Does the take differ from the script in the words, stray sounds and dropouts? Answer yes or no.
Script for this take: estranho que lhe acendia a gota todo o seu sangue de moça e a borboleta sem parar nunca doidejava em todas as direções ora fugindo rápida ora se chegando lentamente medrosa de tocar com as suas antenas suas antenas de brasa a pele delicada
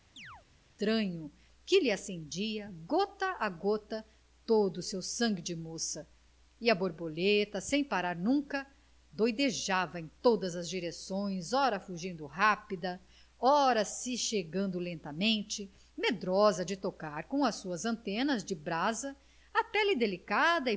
yes